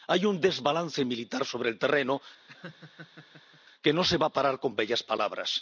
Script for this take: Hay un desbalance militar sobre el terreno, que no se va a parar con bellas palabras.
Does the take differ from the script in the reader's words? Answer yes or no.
no